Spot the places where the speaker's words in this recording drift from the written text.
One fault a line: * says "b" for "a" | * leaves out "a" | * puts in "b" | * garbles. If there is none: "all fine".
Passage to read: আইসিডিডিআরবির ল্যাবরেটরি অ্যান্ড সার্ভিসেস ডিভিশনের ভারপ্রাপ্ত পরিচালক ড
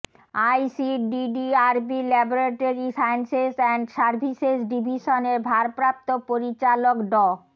* puts in "সায়েন্সেস"